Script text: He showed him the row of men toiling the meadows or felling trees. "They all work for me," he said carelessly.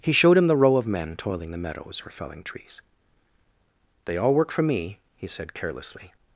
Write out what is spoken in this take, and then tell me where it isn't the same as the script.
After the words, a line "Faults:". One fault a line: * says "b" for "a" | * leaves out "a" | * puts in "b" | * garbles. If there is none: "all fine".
He showed him the row of men toiling the meadows or felling trees. "They all work for me," he said carelessly.
Faults:
all fine